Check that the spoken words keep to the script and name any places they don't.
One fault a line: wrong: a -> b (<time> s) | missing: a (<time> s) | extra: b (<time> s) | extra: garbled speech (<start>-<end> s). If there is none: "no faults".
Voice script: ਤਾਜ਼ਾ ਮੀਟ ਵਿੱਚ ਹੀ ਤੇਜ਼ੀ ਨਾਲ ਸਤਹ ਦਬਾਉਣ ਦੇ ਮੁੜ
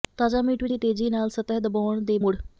no faults